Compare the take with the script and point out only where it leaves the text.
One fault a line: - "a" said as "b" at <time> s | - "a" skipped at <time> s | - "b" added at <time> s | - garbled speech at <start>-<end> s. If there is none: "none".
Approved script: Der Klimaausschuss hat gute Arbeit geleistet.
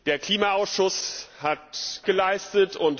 - "gute Arbeit" skipped at 2.0 s